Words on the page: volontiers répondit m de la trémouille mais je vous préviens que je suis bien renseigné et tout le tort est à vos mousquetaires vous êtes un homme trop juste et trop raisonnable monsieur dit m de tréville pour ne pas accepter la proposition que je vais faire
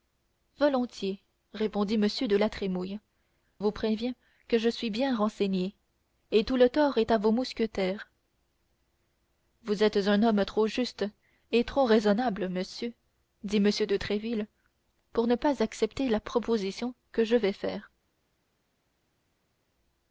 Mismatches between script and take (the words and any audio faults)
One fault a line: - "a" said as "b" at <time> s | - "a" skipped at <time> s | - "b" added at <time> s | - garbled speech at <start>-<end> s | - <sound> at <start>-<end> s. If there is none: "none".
- "mais je" skipped at 3.0 s